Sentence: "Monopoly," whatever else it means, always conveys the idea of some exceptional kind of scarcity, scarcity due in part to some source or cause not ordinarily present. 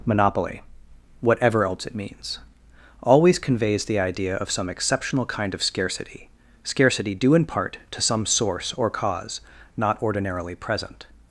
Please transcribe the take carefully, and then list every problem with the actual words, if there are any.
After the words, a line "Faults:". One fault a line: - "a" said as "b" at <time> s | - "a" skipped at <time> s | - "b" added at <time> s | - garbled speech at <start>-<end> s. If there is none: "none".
"Monopoly," whatever else it means, always conveys the idea of some exceptional kind of scarcity, scarcity due in part to some source or cause not ordinarily present.
Faults:
none